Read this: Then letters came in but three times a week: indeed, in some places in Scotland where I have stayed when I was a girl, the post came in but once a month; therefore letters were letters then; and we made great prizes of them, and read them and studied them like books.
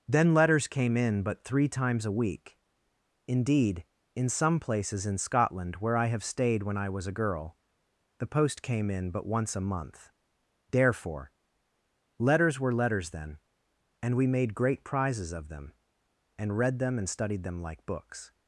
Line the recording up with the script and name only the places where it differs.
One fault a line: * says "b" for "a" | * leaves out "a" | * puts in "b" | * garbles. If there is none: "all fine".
all fine